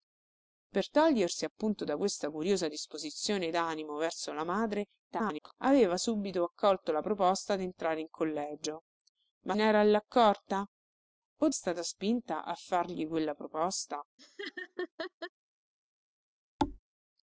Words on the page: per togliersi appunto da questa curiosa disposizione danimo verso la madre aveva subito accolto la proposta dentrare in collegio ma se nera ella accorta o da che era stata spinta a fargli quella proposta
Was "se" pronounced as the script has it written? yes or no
no